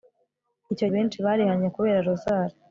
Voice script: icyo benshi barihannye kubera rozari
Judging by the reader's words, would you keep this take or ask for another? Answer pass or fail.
pass